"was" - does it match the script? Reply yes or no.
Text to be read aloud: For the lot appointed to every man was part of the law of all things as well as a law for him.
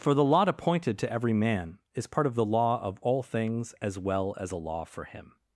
no